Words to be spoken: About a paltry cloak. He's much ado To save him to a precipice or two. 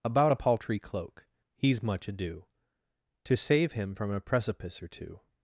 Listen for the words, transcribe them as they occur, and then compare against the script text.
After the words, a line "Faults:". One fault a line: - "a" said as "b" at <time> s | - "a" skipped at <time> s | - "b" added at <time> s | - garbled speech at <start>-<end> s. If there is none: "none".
About a paltry cloak. He's much ado To save him from a precipice or two.
Faults:
- "to" said as "from" at 3.9 s